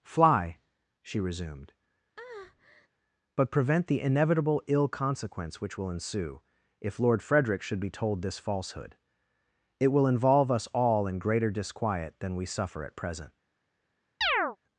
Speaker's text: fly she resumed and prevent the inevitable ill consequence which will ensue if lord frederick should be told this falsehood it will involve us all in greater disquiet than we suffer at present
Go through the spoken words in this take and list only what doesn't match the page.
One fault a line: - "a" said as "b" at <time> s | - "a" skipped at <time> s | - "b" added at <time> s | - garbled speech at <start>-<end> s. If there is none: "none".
- "and" said as "but" at 3.3 s